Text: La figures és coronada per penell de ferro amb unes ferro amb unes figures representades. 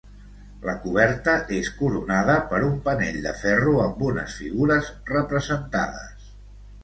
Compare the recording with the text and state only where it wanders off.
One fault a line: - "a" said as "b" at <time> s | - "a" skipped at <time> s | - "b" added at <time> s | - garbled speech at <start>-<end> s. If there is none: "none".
- "figures" said as "coberta" at 0.8 s
- "un" added at 2.7 s
- "ferro amb unes" skipped at 4.4 s